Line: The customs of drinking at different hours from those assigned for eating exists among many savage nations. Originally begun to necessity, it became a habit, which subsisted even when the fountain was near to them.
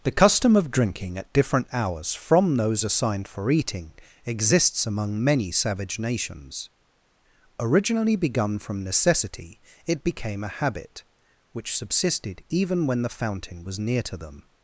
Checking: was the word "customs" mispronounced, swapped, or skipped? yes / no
yes